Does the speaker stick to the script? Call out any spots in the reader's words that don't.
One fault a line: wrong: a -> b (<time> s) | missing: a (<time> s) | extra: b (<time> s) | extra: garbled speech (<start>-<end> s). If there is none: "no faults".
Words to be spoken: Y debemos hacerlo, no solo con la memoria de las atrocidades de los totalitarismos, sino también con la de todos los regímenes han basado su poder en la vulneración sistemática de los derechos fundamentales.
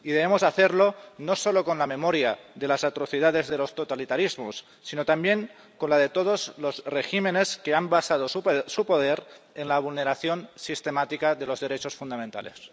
extra: que (7.6 s)